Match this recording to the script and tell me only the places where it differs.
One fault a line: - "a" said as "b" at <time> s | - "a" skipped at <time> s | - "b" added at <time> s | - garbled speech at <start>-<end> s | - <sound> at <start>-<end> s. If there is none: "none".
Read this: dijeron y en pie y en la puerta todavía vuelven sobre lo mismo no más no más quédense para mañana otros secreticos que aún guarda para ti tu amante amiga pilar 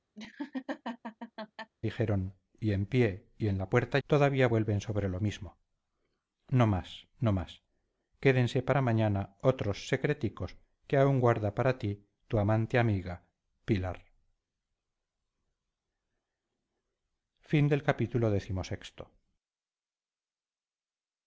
- laugh at 0.2-1.7 s